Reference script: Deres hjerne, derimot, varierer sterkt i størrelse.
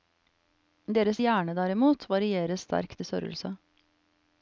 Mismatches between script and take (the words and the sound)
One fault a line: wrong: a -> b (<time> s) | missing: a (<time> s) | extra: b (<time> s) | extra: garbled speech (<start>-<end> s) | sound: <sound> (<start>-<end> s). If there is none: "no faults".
no faults